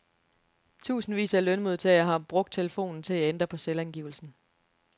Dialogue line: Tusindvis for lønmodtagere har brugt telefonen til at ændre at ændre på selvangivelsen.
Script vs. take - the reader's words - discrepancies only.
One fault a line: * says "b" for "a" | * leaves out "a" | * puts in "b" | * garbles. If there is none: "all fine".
* says "af" for "for"
* leaves out "at ændre"